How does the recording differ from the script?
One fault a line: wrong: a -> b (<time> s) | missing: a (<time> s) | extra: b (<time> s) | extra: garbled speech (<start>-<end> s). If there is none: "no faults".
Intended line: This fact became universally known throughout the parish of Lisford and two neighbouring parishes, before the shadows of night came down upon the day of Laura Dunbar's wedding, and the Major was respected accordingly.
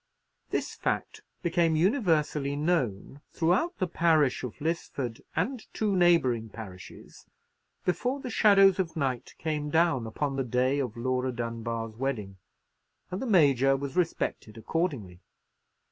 no faults